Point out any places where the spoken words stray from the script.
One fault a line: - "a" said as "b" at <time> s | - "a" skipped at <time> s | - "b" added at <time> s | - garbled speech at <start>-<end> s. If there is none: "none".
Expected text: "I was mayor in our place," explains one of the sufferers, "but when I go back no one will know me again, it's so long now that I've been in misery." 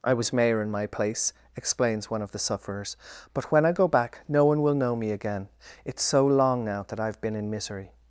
- "our" said as "my" at 0.7 s